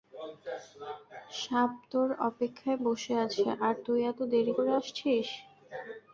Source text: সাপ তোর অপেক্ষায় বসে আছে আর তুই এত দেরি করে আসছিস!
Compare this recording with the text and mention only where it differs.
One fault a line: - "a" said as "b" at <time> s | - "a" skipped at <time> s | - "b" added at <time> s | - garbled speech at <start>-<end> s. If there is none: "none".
none